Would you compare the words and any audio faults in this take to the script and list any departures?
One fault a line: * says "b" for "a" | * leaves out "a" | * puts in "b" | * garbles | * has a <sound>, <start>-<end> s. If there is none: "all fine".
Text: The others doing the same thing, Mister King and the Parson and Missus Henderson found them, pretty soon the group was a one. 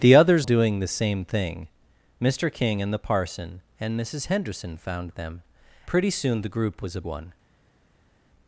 all fine